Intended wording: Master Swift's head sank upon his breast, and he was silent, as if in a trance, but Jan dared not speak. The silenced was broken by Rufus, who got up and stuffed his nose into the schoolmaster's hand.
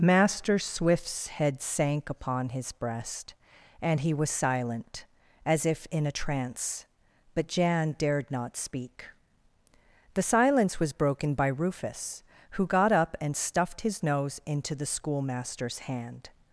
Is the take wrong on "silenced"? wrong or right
wrong